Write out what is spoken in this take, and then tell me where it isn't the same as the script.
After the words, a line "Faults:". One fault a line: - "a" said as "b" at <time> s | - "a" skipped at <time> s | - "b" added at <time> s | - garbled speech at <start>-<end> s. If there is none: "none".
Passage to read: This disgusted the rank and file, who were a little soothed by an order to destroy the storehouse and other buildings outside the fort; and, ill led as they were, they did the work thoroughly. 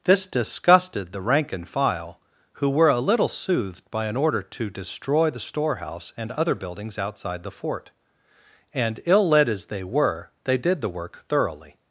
This disgusted the rank and file, who were a little soothed by an order to destroy the storehouse and other buildings outside the fort; and, ill led as they were, they did the work thoroughly.
Faults:
none